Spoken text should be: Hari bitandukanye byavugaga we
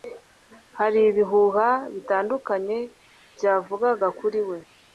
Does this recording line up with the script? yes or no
no